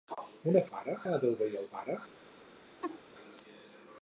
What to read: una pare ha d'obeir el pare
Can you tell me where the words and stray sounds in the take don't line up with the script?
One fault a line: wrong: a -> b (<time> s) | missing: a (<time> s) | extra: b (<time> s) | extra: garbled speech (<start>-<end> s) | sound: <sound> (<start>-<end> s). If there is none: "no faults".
sound: laugh (2.8-3.0 s)